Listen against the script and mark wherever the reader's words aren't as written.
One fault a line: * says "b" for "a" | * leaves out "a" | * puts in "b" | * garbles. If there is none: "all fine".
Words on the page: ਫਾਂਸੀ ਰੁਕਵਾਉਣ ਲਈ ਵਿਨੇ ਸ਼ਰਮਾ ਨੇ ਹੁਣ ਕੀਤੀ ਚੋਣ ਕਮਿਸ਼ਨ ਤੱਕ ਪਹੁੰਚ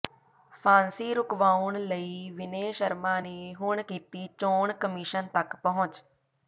all fine